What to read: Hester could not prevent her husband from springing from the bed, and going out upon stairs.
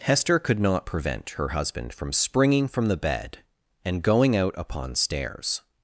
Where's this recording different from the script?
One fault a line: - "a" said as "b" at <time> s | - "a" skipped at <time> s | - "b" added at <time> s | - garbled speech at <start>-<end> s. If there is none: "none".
none